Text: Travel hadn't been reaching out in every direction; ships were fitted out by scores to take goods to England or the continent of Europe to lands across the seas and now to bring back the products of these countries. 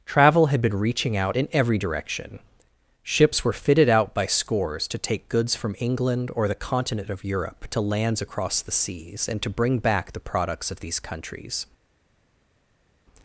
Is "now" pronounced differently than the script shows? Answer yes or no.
yes